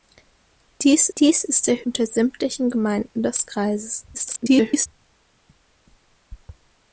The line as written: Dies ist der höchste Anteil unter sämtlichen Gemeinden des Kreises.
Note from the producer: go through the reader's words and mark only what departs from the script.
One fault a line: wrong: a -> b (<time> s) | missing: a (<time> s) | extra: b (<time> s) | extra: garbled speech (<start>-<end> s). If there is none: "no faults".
extra: dies (1.2 s)
missing: höchste Anteil (1.9 s)
extra: garbled speech (4.1-4.9 s)